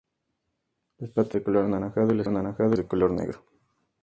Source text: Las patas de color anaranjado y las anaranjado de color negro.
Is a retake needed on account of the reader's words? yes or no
no